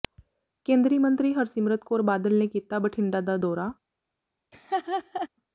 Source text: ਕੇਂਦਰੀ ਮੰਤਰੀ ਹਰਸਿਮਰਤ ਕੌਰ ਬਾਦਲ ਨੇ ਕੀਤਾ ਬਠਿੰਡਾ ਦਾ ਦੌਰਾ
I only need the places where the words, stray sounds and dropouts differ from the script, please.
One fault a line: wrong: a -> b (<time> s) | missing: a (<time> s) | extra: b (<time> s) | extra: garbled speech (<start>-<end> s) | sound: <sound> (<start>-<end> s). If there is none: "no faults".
sound: laugh (4.5-5.3 s)